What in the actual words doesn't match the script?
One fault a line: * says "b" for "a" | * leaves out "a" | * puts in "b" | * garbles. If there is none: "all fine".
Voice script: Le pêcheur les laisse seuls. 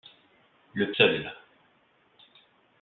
* leaves out "pêcheur les laisse"